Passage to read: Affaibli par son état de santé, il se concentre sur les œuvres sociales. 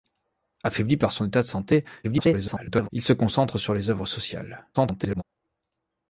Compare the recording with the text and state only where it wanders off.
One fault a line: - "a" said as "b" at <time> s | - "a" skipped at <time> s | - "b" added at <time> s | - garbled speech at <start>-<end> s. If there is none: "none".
- garbled speech at 2.0-2.9 s
- garbled speech at 4.7-5.2 s